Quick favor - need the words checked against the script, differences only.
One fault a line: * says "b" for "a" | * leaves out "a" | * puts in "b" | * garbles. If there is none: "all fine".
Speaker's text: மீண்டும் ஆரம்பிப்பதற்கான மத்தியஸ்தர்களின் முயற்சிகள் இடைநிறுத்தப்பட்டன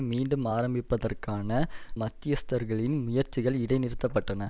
all fine